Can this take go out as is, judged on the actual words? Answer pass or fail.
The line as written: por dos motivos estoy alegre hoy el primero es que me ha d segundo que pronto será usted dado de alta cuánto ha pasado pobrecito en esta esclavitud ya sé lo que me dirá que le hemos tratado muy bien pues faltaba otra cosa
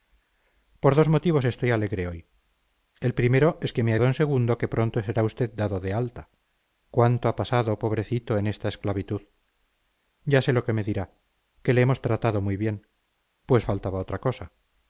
pass